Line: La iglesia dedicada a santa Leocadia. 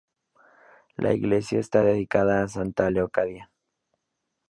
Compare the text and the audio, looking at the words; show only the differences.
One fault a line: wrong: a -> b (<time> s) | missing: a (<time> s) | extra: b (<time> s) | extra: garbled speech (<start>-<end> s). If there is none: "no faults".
extra: está (1.6 s)